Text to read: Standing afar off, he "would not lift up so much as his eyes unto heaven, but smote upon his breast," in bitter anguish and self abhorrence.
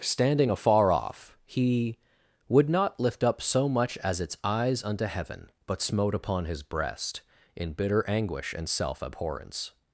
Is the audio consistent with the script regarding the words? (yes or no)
no